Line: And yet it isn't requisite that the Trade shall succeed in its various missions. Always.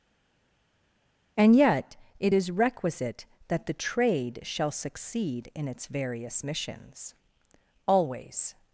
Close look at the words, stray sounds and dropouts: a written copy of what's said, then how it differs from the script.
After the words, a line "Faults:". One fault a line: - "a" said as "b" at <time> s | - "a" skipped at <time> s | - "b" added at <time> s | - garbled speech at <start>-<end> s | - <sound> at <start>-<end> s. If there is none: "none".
And yet it is requisite that the Trade shall succeed in its various missions. Always.
Faults:
- "isn't" said as "is" at 2.3 s